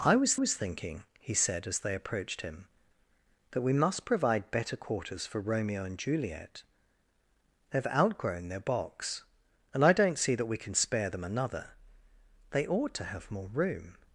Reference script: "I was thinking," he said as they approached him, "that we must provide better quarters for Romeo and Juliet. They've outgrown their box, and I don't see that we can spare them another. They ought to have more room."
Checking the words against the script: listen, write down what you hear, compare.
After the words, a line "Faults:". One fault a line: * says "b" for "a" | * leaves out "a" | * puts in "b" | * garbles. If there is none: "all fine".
"I was was thinking," he said as they approached him, "that we must provide better quarters for Romeo and Juliet. They've outgrown their box, and I don't see that we can spare them another. They ought to have more room."
Faults:
* puts in "was"